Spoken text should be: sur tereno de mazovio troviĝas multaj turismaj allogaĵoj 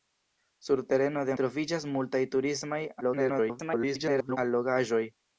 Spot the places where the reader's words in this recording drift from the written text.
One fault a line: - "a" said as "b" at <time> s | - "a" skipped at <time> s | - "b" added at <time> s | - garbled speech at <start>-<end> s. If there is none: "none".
- "mazovio" skipped at 1.4 s
- garbled speech at 3.0-4.4 s